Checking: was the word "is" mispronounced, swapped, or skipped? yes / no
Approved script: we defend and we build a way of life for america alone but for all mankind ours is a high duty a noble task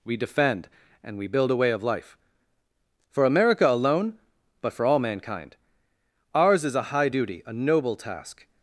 no